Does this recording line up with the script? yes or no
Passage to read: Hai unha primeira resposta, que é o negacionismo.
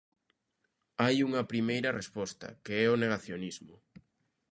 yes